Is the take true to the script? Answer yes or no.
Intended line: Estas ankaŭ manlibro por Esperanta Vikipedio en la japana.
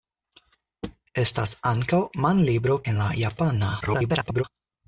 no